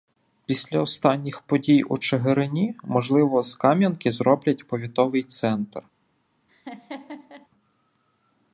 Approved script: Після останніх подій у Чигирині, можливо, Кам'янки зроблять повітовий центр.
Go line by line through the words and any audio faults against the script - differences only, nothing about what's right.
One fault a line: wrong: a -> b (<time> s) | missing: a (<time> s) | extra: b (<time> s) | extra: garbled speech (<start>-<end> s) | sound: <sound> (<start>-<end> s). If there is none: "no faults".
extra: з (3.4 s)
sound: laugh (6.5-7.5 s)